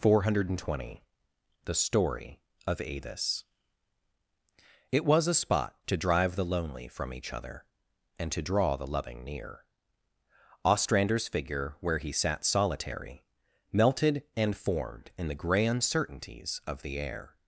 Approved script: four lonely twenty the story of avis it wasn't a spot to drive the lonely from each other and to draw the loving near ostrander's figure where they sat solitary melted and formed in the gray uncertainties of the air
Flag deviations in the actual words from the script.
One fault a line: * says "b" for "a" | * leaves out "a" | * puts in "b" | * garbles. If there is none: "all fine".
* says "hundred" for "lonely"
* says "was" for "wasn't"
* says "he" for "they"